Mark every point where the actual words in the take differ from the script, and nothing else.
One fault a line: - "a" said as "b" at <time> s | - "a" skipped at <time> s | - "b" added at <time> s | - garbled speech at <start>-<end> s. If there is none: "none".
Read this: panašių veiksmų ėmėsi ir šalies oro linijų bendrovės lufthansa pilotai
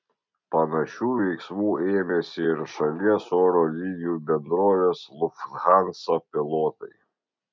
none